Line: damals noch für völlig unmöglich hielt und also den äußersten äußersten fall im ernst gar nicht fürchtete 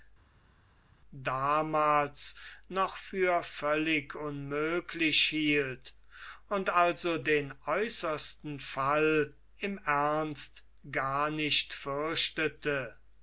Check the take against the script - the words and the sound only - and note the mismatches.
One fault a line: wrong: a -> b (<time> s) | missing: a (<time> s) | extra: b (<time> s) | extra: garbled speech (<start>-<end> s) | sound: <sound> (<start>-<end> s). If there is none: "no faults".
missing: äußersten (8.6 s)